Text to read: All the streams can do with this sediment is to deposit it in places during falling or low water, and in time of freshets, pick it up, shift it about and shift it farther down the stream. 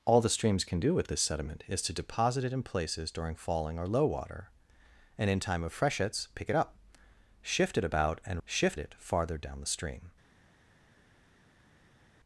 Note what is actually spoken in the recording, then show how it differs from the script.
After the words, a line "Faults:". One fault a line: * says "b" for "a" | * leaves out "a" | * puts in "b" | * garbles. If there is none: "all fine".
All the streams can do with this sediment is to deposit it in places during falling or low water, and in time of freshets, pick it up, shift it about and shift it farther down the stream.
Faults:
all fine